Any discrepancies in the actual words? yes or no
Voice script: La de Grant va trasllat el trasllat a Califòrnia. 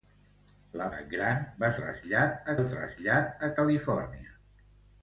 no